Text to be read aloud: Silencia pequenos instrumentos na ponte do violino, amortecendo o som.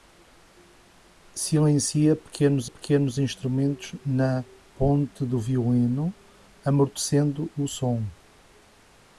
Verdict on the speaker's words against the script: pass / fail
fail